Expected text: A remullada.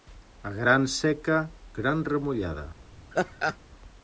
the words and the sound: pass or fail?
fail